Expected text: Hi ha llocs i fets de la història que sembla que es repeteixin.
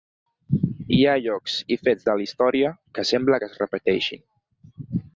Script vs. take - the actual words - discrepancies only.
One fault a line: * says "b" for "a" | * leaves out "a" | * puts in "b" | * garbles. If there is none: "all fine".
all fine